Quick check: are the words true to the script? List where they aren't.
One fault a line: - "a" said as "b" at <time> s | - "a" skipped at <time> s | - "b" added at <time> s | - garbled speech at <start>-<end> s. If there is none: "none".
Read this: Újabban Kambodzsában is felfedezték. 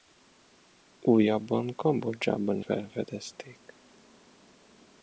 - "is" skipped at 2.6 s